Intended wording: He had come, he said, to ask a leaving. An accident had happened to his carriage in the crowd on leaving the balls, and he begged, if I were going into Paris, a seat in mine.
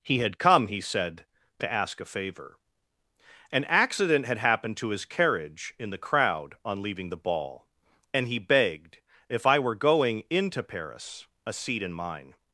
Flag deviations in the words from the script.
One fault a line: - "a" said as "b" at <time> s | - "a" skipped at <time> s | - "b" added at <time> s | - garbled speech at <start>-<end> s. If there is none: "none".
- "leaving" said as "favor" at 2.0 s
- "balls" said as "ball" at 7.2 s